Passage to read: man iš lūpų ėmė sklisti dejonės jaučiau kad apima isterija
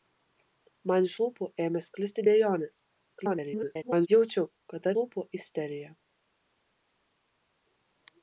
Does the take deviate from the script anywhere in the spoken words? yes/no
yes